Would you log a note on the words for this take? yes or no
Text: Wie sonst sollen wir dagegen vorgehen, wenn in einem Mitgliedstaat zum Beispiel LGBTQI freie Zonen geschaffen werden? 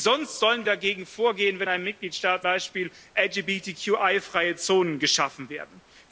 yes